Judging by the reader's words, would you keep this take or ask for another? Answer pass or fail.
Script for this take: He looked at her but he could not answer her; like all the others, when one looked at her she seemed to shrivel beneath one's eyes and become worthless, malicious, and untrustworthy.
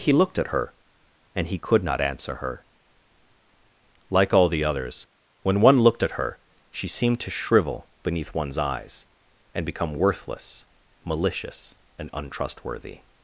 fail